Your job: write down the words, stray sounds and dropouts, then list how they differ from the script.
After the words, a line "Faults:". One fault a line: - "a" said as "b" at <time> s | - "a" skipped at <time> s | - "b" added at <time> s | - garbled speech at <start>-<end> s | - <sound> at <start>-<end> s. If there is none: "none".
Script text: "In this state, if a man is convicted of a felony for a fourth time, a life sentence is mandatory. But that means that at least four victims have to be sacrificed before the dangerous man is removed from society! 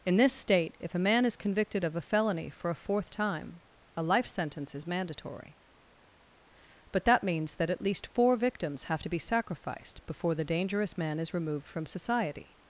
"In this state, if a man is convicted of a felony for a fourth time, a life sentence is mandatory. But that means that at least four victims have to be sacrificed before the dangerous man is removed from society!
Faults:
none